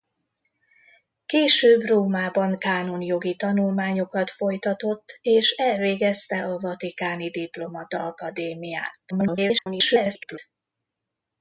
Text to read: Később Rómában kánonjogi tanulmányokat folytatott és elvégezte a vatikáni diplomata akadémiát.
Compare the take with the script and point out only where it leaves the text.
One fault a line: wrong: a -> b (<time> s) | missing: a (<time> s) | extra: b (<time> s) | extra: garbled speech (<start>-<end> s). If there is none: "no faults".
extra: garbled speech (9.1-10.4 s)